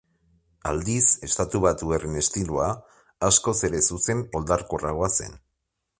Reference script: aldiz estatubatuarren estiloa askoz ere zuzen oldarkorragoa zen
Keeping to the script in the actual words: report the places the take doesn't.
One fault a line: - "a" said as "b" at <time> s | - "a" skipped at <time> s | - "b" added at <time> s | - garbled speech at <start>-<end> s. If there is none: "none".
none